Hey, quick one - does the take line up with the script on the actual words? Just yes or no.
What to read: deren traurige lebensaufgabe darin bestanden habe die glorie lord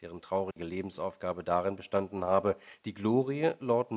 yes